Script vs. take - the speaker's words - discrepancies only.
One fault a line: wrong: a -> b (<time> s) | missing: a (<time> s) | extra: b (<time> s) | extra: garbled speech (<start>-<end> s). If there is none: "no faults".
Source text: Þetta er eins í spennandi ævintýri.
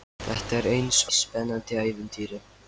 no faults